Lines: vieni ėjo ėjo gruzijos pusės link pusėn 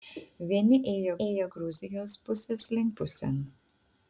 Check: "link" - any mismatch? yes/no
no